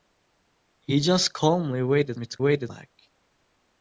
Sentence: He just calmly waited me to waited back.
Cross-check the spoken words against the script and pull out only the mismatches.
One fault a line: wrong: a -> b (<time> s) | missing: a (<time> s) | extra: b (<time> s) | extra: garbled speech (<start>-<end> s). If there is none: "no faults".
no faults